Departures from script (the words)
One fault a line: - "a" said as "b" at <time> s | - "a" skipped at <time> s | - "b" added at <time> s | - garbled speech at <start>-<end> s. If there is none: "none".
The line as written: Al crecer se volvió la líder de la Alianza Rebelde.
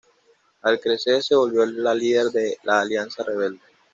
none